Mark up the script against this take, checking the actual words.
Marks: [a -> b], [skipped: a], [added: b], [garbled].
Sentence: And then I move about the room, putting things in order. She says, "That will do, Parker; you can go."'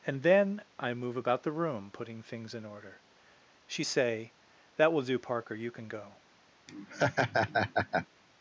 And then I move about the room, putting things in order. She [says, -> say] "That will do, Parker; you can go."'